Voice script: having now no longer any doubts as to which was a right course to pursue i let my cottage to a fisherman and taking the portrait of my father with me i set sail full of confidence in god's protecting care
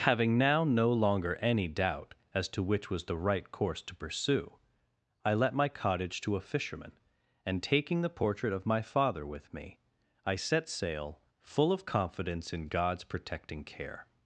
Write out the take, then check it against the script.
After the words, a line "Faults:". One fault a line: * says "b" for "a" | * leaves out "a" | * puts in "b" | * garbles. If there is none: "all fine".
having now no longer any doubt as to which was the right course to pursue i let my cottage to a fisherman and taking the portrait of my father with me i set sail full of confidence in god's protecting care
Faults:
* says "doubt" for "doubts"
* says "the" for "a"